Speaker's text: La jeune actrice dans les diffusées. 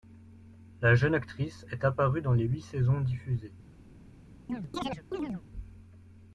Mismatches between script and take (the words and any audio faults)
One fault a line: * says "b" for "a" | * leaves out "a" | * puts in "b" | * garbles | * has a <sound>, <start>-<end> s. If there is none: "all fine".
* puts in "est apparue"
* puts in "huit saisons"
* has a chirp, 4.5-5.4 s